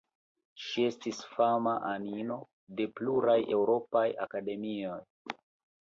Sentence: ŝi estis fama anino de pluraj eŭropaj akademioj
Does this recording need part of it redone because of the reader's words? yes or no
no